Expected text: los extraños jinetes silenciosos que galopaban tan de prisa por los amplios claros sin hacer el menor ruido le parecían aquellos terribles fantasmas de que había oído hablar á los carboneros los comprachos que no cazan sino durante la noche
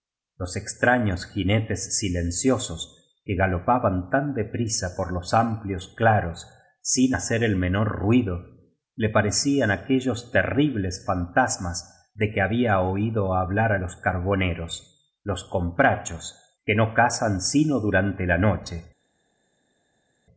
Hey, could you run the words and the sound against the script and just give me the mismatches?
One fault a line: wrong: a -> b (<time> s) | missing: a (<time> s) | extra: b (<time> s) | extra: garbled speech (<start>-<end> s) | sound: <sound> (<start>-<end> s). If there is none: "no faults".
no faults